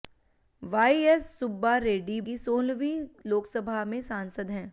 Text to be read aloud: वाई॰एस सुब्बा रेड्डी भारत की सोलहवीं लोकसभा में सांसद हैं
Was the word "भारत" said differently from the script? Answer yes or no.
yes